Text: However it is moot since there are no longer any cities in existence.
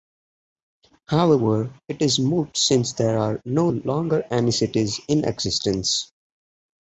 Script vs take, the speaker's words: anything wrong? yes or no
no